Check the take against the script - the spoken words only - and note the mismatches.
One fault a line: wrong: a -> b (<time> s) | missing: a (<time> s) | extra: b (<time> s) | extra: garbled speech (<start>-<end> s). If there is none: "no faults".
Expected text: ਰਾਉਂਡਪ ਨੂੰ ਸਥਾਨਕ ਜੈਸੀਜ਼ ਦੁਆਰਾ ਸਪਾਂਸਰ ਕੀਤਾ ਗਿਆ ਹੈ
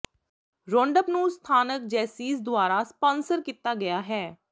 no faults